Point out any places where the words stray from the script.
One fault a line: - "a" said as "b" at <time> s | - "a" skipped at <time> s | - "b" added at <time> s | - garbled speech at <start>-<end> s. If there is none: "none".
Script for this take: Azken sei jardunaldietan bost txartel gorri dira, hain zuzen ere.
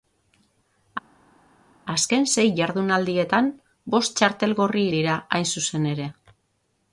none